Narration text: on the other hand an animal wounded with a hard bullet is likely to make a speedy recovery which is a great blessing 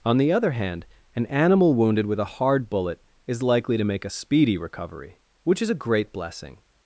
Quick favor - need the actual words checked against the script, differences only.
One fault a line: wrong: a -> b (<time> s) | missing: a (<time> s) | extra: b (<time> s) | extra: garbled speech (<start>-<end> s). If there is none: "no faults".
no faults